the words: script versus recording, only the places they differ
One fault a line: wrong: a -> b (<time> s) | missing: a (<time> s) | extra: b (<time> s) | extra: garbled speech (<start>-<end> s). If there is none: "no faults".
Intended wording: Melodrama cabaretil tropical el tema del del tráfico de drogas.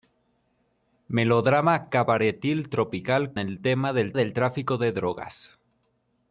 no faults